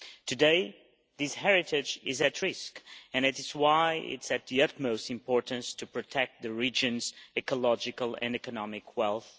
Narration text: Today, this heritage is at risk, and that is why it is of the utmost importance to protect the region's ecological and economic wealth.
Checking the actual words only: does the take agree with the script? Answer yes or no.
yes